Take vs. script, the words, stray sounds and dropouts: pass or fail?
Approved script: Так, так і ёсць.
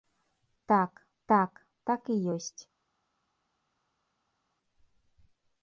fail